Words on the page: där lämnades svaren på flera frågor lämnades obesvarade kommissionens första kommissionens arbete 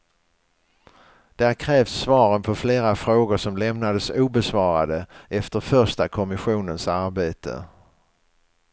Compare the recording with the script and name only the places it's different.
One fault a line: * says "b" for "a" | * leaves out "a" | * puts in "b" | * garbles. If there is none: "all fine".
* says "krävs" for "lämnades"
* puts in "som"
* says "efter" for "kommissionens"